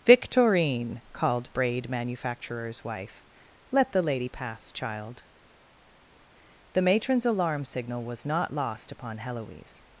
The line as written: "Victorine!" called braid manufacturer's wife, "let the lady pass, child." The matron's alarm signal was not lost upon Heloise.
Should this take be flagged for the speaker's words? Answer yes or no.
no